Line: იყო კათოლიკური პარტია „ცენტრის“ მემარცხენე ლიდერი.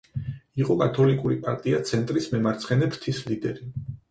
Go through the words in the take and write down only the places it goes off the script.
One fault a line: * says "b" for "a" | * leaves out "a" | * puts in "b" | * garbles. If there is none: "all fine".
* puts in "ფრთის"